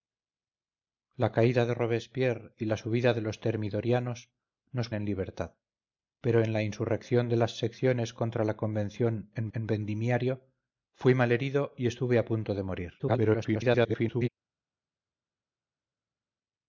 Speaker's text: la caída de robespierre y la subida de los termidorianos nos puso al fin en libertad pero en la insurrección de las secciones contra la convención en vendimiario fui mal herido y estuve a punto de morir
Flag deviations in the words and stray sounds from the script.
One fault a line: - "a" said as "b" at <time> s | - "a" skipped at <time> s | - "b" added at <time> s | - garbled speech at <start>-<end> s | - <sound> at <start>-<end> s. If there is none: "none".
- "puso al fin" skipped at 4.9 s
- "en" added at 9.5 s
- garbled speech at 13.0-14.3 s